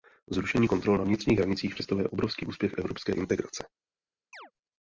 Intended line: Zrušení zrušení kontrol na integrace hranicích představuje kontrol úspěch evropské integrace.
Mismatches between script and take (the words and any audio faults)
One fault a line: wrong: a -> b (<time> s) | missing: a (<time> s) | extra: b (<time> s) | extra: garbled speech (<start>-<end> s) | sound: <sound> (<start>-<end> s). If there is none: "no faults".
missing: zrušení (0.7 s)
wrong: integrace -> vnitřních (1.0 s)
wrong: kontrol -> obrovský (2.1 s)
sound: chirp (4.3-4.5 s)